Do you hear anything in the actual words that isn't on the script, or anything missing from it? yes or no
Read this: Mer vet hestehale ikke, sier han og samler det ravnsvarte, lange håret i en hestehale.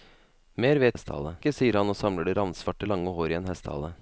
no